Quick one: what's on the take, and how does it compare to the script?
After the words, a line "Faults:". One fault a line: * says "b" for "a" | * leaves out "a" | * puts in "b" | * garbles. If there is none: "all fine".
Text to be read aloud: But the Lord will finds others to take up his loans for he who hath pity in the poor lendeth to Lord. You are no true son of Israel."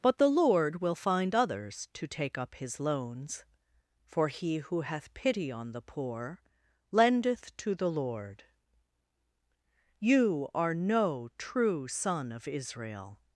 But the Lord will find others to take up his loans for he who hath pity on the poor lendeth to the Lord. You are no true son of Israel."
Faults:
* says "find" for "finds"
* says "on" for "in"
* puts in "the"